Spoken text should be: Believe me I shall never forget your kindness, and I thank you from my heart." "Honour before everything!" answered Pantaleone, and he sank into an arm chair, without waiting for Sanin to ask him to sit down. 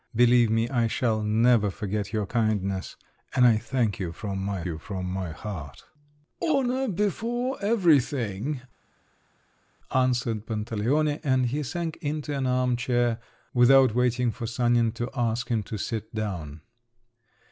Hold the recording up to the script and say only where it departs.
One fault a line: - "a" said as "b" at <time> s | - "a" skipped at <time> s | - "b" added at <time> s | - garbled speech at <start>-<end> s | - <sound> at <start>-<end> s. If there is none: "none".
- "you from my" added at 4.6 s